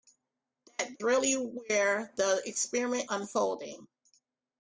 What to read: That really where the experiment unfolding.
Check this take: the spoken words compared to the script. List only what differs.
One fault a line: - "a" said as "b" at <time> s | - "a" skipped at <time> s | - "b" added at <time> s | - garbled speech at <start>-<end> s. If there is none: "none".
none